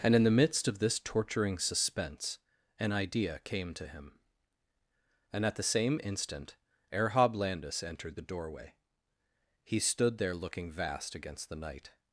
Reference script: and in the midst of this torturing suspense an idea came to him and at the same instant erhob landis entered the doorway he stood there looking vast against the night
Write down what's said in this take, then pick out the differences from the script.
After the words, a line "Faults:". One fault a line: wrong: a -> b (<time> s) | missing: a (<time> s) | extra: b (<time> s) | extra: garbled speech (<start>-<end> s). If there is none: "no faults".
and in the midst of this torturing suspense an idea came to him and at the same instant erhob landis entered the doorway he stood there looking vast against the night
Faults:
no faults